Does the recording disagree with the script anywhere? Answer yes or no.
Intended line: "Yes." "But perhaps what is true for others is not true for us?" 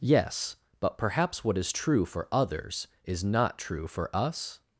no